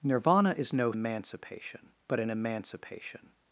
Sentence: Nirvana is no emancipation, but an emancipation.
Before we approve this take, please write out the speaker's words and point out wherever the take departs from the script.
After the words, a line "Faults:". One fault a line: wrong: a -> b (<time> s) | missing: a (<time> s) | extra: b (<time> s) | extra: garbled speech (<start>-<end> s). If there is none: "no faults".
Nirvana is no emancipation, but an emancipation.
Faults:
no faults